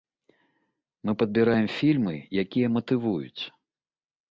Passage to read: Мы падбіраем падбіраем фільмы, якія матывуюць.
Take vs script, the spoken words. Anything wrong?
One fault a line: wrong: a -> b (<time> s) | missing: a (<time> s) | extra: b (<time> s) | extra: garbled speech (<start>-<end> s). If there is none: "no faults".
missing: падбіраем (1.7 s)